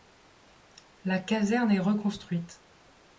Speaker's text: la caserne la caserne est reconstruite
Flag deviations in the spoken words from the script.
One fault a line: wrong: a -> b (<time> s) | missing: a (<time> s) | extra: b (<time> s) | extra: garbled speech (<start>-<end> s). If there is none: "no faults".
missing: la caserne (1.7 s)